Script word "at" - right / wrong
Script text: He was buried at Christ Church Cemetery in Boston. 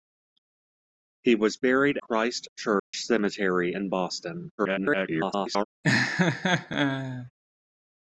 wrong